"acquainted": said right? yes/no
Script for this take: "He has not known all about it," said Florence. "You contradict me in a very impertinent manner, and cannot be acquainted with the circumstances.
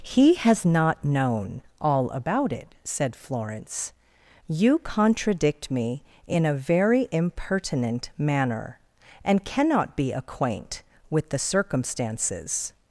no